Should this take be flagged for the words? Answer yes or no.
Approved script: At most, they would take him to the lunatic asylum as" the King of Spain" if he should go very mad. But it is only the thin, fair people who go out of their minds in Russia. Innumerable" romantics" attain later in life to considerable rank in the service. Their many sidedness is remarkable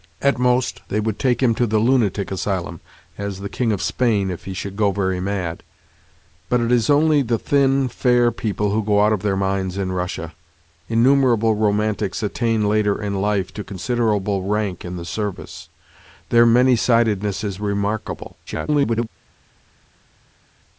yes